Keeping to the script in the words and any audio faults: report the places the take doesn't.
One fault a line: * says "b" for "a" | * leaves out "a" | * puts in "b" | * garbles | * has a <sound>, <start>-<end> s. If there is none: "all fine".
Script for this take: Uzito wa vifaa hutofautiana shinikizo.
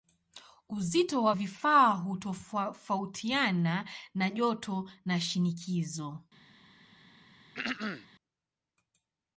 * puts in "na joto na"
* has a throat clearing, 7.5-8.1 s